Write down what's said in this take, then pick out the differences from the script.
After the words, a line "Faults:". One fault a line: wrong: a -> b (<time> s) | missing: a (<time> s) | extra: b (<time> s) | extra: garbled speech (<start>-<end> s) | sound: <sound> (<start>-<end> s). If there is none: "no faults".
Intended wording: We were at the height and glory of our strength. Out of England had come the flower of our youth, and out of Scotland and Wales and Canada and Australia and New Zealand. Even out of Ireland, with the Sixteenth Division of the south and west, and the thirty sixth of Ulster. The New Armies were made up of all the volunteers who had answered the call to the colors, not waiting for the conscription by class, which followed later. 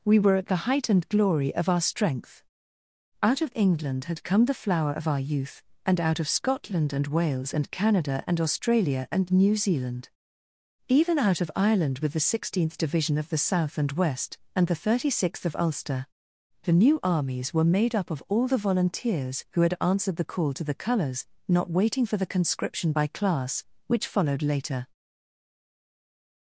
We were at the height and glory of our strength. Out of England had come the flower of our youth, and out of Scotland and Wales and Canada and Australia and New Zealand. Even out of Ireland, with the Sixteenth Division of the south and west, and the thirty sixth of Ulster. The New Armies were made up of all the volunteers who had answered the call to the colors, not waiting for the conscription by class, which followed later.
Faults:
no faults